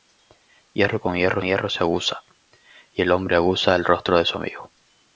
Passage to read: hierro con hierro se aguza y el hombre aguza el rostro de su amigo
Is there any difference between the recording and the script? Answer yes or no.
yes